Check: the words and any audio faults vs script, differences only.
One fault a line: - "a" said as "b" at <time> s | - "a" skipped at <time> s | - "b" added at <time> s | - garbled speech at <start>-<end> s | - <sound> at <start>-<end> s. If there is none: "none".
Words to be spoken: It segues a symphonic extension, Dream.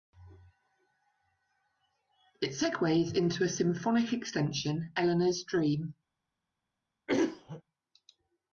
- "into" added at 3.1 s
- "Eleanor's" added at 4.9 s
- throat clearing at 7.1-7.6 s